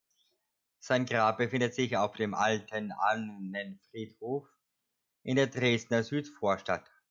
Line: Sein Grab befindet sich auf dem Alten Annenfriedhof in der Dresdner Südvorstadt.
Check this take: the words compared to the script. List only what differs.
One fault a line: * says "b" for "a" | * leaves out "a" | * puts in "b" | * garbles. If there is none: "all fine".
all fine